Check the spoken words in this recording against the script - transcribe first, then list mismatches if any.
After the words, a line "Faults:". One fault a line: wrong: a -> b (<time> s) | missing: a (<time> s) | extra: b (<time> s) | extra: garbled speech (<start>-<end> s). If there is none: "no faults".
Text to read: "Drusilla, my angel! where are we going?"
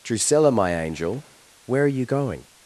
"Drusilla, my angel! where are you going?"
Faults:
wrong: we -> you (1.9 s)